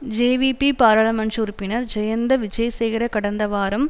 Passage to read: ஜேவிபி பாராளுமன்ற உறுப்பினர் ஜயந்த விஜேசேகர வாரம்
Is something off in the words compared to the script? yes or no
yes